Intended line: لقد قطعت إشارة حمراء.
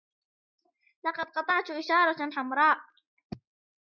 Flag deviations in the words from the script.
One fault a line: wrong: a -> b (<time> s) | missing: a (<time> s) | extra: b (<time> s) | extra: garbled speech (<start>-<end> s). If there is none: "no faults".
no faults